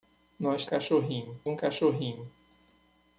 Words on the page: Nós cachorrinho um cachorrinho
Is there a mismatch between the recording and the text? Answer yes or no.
no